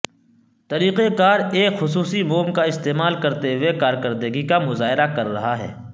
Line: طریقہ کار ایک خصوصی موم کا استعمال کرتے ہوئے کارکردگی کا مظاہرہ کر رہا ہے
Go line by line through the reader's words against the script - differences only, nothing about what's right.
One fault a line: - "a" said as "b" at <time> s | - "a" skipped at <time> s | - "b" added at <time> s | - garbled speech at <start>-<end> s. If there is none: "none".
none